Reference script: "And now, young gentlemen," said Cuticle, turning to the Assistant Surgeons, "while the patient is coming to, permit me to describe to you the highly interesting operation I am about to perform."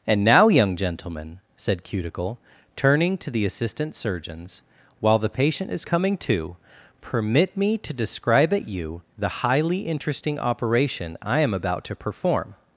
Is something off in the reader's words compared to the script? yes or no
yes